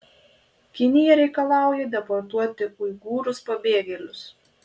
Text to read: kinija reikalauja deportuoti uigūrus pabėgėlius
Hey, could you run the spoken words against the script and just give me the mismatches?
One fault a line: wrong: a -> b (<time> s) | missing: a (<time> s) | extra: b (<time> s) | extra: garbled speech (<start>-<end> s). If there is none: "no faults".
no faults